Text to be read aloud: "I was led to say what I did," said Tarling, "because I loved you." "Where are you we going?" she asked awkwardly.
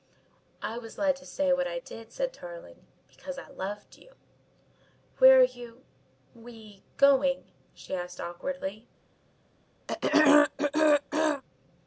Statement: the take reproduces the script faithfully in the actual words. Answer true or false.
true